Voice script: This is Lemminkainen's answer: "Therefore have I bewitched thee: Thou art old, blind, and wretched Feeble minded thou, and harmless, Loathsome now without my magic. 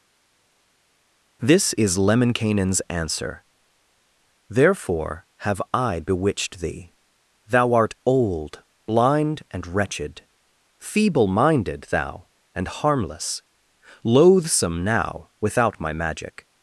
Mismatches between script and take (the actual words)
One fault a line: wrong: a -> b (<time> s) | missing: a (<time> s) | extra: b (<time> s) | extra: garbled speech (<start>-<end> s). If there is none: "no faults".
no faults